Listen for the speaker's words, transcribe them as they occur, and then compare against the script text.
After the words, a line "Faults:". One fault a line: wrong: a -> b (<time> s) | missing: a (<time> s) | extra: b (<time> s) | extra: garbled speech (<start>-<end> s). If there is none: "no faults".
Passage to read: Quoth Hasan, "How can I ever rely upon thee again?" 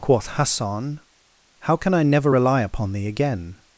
Quoth Hasan, "How can I never rely upon thee again?"
Faults:
wrong: ever -> never (2.0 s)